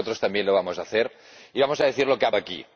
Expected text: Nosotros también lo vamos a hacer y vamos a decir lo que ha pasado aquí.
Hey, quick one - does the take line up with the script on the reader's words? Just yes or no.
no